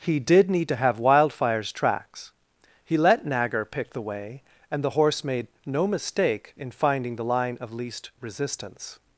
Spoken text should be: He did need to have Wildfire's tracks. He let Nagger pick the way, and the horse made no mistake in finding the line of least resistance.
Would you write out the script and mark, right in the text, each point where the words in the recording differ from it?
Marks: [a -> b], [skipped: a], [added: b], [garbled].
He did need to have Wildfire's tracks. He let Nagger pick the way, and the horse made no mistake in finding the line of least resistance.